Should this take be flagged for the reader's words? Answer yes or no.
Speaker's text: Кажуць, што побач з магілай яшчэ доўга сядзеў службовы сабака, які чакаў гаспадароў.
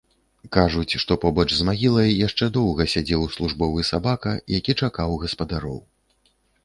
no